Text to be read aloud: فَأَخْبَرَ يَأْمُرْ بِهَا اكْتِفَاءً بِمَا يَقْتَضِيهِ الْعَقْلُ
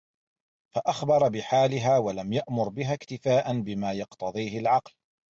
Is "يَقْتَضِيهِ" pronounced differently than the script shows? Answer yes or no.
no